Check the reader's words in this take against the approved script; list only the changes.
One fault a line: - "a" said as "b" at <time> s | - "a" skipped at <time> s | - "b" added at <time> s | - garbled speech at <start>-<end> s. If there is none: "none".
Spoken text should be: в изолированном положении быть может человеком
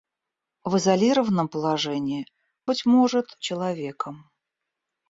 none